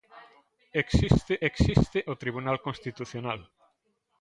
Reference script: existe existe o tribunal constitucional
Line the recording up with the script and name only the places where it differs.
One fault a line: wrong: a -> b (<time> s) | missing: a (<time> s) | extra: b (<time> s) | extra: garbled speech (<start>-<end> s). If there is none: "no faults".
no faults